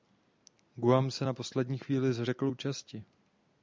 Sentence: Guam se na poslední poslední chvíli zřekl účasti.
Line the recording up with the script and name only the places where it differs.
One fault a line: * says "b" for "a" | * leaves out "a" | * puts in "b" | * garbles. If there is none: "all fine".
* leaves out "poslední"